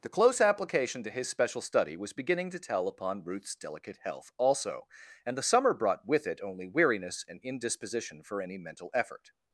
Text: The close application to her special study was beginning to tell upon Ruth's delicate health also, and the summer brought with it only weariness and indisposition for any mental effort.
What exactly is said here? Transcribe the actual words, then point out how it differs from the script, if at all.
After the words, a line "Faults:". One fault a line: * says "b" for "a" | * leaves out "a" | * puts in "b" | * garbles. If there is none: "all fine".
The close application to his special study was beginning to tell upon Ruth's delicate health also, and the summer brought with it only weariness and indisposition for any mental effort.
Faults:
* says "his" for "her"